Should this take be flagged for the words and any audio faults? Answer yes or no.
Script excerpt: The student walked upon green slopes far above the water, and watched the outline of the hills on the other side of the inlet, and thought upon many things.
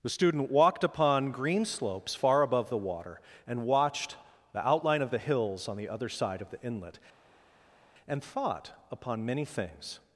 no